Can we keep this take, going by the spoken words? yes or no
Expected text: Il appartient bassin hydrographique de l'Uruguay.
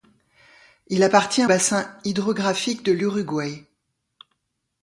yes